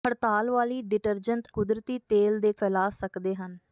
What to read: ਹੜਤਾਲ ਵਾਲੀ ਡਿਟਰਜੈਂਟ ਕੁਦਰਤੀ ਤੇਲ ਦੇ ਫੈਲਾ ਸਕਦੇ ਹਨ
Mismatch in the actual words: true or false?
false